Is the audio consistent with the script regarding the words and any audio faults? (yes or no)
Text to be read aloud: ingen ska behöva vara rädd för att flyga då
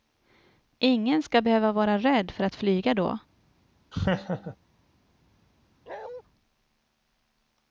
no